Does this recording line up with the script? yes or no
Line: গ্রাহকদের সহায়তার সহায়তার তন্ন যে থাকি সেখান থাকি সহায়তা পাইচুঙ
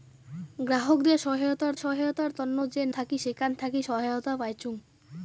yes